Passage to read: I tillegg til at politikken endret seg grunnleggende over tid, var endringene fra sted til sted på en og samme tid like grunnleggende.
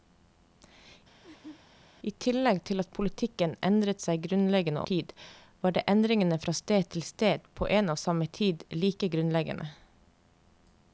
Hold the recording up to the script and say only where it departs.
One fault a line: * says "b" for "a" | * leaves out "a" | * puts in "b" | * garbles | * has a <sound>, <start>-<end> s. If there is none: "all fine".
* has a laugh, 1.2-1.6 s
* leaves out "over"